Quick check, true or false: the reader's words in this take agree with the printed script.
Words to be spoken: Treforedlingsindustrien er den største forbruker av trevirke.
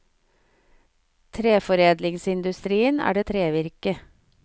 false